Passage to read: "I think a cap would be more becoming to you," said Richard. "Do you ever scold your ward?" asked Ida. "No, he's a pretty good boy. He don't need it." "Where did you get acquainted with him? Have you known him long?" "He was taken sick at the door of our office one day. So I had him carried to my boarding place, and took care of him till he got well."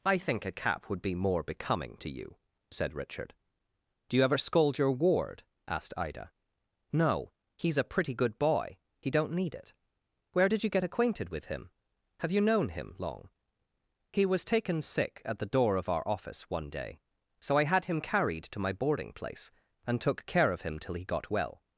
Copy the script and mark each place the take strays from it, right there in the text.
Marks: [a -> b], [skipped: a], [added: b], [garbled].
"I think a cap would be more becoming to you," said Richard. "Do you ever scold your ward?" asked Ida. "No, he's a pretty good boy. He don't need it." "Where did you get acquainted with him? Have you known him long?" "He was taken sick at the door of our office one day. So I had him carried to my boarding place, and took care of him till he got well."